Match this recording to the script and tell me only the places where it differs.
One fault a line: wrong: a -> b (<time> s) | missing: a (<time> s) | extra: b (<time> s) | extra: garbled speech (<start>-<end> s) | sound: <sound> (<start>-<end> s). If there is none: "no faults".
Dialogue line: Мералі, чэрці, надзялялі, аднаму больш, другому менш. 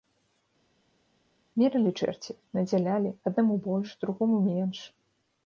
no faults